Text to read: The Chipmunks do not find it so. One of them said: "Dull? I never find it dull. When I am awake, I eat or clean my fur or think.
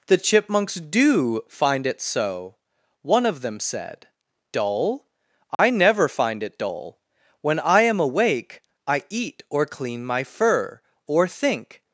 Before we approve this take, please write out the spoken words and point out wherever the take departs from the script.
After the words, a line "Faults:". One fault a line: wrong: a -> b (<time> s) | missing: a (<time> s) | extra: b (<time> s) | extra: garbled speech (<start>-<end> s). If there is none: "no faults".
The Chipmunks do find it so. One of them said: "Dull? I never find it dull. When I am awake, I eat or clean my fur or think.
Faults:
missing: not (1.4 s)